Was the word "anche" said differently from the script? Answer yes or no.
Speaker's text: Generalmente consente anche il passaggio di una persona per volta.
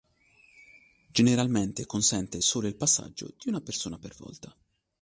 yes